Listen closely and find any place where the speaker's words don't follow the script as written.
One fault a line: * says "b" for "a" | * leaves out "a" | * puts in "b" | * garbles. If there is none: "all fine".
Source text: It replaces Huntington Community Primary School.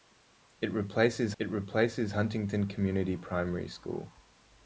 * puts in "it replaces"